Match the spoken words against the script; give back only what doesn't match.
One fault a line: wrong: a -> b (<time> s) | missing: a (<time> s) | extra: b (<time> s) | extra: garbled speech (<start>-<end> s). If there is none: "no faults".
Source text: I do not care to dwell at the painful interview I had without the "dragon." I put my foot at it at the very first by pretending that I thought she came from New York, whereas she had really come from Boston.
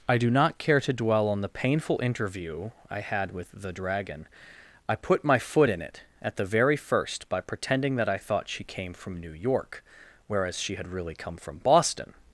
wrong: at -> on (1.3 s)
wrong: without -> with (3.3 s)
wrong: at -> in (5.7 s)